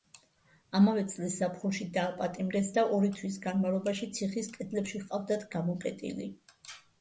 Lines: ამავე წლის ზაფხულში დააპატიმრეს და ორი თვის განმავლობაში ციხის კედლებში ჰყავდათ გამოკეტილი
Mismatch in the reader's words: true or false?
false